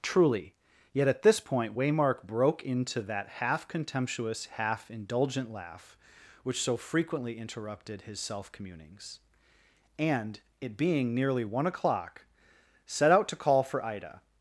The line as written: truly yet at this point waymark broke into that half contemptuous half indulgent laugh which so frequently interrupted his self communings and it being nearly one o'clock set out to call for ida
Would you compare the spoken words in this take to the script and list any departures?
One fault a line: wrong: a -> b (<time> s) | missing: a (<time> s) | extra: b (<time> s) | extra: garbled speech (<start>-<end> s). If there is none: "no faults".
no faults